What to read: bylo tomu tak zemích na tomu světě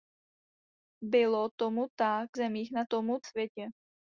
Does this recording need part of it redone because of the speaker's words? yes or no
no